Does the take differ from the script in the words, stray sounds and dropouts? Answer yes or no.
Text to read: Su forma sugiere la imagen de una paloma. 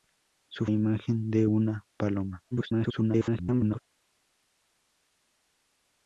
yes